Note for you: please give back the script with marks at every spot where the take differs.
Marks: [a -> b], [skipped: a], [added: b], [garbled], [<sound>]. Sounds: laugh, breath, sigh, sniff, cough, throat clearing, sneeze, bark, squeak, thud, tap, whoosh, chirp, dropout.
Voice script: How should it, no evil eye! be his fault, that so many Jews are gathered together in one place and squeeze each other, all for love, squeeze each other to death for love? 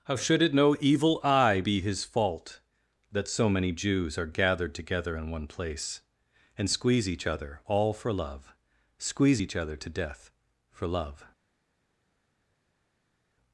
How should it, no evil eye! be his fault, that so many Jews are gathered together in one place and squeeze each other, all for love, squeeze each other to death for love?